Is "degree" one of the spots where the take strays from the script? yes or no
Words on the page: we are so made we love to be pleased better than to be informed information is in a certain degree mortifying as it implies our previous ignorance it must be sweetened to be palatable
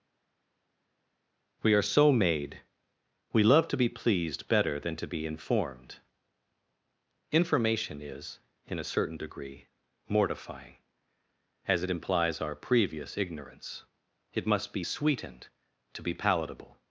no